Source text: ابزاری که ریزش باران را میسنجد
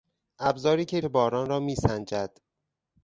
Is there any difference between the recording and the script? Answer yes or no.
yes